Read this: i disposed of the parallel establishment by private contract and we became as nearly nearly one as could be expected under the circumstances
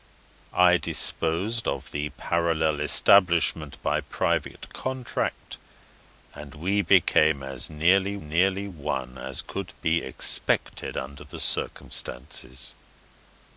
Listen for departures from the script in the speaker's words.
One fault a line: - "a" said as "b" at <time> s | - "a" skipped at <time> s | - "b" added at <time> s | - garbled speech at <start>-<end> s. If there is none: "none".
none